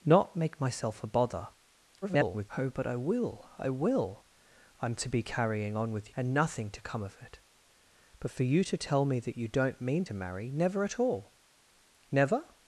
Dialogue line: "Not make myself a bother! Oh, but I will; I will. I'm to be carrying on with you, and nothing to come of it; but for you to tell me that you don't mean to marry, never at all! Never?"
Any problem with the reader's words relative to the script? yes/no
yes